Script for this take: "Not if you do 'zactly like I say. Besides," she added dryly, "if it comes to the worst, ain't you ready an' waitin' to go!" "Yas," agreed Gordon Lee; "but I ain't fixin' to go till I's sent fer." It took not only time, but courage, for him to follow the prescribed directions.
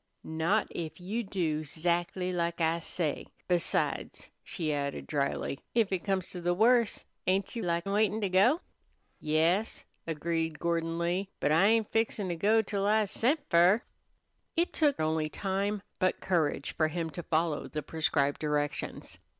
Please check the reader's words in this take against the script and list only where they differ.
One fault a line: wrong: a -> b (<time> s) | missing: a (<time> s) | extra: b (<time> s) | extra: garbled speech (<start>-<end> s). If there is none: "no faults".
wrong: ready -> like (7.6 s)
missing: not (15.0 s)